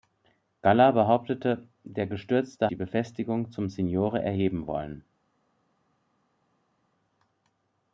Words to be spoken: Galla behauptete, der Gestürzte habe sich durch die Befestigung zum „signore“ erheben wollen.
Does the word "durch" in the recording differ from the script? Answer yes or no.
yes